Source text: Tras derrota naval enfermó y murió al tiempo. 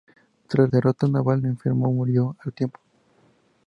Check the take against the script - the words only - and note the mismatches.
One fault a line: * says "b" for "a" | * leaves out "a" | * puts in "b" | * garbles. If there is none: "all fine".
all fine